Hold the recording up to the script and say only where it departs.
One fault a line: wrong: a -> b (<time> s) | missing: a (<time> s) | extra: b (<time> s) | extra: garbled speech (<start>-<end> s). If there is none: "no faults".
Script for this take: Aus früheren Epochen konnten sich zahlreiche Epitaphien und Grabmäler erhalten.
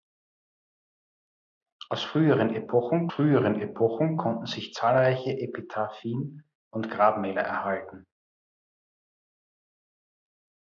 extra: früheren Epochen (3.1 s)